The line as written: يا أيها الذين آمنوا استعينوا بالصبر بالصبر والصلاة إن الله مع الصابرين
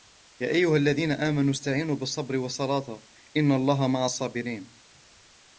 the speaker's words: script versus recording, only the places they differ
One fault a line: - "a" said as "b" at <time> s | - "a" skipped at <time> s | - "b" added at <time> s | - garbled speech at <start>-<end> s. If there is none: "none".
- "بالصبر" skipped at 2.4 s